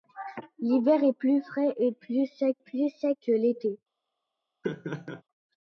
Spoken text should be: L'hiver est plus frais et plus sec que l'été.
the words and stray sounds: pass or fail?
fail